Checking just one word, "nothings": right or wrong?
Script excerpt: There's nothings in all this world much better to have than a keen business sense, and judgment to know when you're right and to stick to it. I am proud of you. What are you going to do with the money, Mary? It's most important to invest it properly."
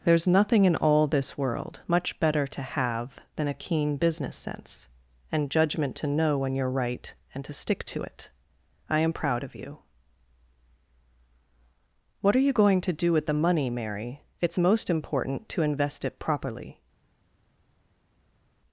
wrong